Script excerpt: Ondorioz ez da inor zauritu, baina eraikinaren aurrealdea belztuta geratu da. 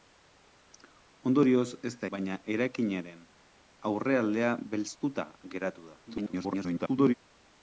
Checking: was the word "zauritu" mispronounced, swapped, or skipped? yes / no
yes